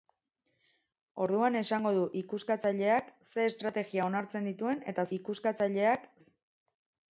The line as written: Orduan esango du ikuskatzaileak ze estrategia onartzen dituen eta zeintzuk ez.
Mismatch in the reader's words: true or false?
true